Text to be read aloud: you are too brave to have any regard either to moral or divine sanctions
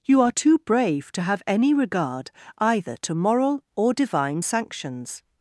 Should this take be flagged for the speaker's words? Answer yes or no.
no